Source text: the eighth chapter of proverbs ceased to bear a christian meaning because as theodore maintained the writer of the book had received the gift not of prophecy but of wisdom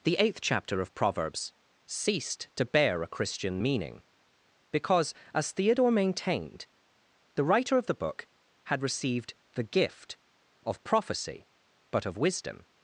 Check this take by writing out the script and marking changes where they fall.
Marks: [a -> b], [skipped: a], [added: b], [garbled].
the eighth chapter of proverbs ceased to bear a christian meaning because as theodore maintained the writer of the book had received the gift [skipped: not] of prophecy but of wisdom